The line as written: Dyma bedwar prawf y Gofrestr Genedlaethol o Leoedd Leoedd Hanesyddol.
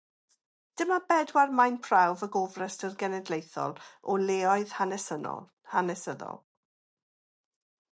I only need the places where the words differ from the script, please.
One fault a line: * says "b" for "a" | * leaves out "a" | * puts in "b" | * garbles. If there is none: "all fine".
* puts in "maen"
* leaves out "Leoedd"